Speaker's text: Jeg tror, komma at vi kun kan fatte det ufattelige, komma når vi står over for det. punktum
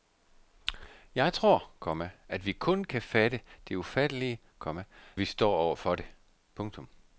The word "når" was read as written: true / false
false